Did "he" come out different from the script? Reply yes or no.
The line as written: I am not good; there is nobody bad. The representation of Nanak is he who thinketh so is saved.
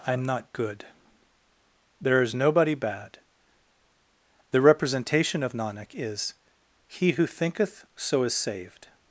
no